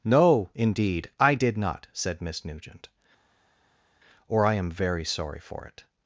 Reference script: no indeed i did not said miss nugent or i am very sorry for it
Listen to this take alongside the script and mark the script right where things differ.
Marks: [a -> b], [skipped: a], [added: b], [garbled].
no indeed i did not said miss nugent or i am very sorry for it